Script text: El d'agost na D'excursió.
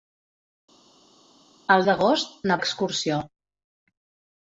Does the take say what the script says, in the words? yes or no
yes